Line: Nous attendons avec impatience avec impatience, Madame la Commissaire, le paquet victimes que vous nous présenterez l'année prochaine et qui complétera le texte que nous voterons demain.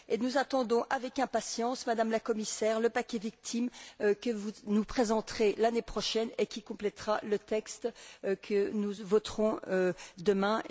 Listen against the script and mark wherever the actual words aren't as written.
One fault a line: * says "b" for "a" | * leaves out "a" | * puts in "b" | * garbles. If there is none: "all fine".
* leaves out "avec impatience"